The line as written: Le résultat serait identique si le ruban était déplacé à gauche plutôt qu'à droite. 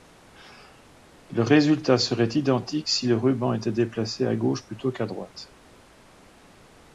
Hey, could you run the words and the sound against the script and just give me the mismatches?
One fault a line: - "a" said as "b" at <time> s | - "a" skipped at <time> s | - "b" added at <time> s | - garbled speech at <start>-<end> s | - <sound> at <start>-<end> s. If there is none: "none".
none